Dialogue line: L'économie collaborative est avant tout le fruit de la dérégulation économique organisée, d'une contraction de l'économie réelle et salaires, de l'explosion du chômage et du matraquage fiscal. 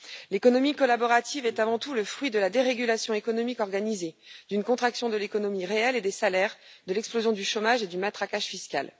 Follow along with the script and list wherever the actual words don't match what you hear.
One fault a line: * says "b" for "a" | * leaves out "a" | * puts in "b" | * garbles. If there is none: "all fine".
* puts in "des"